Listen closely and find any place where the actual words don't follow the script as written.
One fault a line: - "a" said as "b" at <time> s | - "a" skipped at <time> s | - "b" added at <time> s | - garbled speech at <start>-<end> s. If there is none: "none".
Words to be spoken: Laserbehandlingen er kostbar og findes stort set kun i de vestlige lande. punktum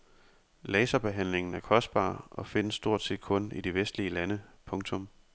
none